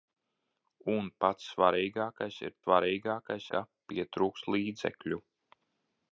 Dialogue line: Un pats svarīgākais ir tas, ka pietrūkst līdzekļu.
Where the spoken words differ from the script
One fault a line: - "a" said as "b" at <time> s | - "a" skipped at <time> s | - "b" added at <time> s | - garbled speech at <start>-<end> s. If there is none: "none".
- "tas" said as "svarīgākais" at 2.6 s